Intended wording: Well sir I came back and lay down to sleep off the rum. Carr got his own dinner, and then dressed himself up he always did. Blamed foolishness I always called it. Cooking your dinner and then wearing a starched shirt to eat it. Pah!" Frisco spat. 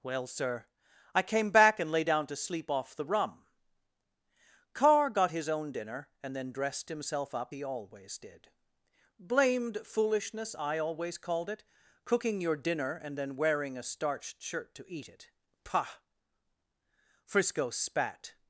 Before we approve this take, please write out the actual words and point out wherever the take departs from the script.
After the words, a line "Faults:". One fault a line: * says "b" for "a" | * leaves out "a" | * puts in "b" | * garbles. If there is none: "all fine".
Well sir I came back and lay down to sleep off the rum. Carr got his own dinner, and then dressed himself up he always did. Blamed foolishness I always called it. Cooking your dinner and then wearing a starched shirt to eat it. Pah!" Frisco spat.
Faults:
all fine